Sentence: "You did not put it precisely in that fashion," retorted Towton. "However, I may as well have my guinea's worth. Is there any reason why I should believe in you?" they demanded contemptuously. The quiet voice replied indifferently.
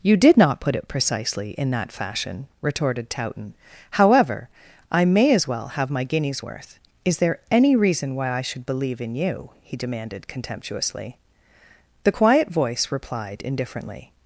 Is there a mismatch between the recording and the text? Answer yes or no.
yes